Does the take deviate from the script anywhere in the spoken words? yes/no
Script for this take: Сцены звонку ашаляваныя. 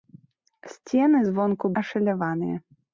no